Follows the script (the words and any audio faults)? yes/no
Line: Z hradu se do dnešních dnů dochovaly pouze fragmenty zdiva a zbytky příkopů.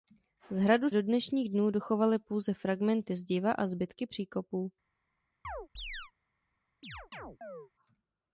no